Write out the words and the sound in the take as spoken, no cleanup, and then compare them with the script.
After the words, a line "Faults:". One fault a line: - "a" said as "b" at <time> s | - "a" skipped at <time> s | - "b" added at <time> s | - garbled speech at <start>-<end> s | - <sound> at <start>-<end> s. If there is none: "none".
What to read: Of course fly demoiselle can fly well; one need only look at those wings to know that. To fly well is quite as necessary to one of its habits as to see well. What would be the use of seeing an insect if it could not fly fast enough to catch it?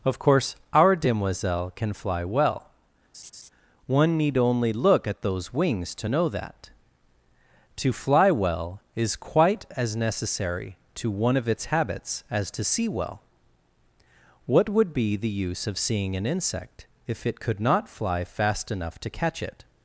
Of course our demoiselle can fly well; one need only look at those wings to know that. To fly well is quite as necessary to one of its habits as to see well. What would be the use of seeing an insect if it could not fly fast enough to catch it?
Faults:
- "fly" said as "our" at 0.7 s
- laugh at 3.1-3.5 s